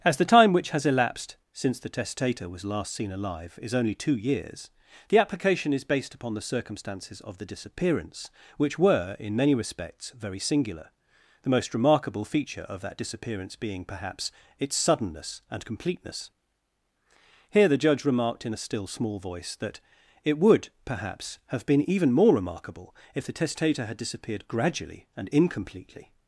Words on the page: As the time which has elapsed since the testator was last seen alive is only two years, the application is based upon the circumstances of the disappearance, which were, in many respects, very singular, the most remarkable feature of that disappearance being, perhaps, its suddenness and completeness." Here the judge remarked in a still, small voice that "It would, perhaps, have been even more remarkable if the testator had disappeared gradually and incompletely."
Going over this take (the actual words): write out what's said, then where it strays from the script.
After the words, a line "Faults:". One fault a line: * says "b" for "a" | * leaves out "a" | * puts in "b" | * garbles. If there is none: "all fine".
As the time which has elapsed since the testator was last seen alive is only two years, the application is based upon the circumstances of the disappearance, which were, in many respects, very singular, the most remarkable feature of that disappearance being, perhaps, its suddenness and completeness." Here the judge remarked in a still, small voice that "It would, perhaps, have been even more remarkable if the testator had disappeared gradually and incompletely."
Faults:
all fine